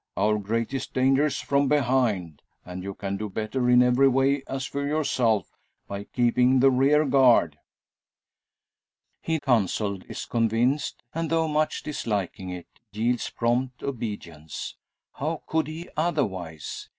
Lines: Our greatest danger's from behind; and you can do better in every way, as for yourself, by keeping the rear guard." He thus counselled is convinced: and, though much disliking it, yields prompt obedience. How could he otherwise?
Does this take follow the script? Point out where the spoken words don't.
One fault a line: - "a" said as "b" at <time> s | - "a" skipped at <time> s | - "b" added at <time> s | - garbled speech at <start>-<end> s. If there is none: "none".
- "thus" skipped at 9.4 s